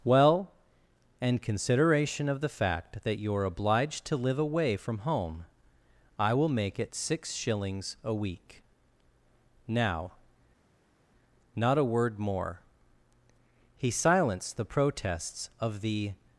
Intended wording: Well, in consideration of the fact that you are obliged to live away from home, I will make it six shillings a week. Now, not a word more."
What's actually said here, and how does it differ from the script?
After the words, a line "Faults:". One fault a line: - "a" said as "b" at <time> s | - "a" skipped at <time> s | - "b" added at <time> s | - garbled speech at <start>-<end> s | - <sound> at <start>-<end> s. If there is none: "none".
Well, in consideration of the fact that you are obliged to live away from home, I will make it six shillings a week. Now, not a word more." He silenced the protests of the
Faults:
- "He silenced the protests of the" added at 13.8 s